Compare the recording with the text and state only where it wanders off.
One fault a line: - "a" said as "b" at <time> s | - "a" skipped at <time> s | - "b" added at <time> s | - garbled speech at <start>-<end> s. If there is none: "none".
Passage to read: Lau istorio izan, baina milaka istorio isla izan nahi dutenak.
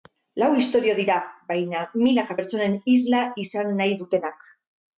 - "izan" said as "dira" at 1.0 s
- "istorio" said as "pertsonen" at 2.4 s